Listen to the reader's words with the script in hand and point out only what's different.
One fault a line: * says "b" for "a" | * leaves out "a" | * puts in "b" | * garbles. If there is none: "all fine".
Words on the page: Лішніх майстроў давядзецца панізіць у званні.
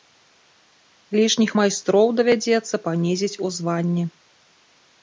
all fine